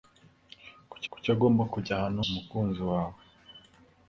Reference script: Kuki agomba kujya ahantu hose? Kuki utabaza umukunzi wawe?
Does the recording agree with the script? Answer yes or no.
no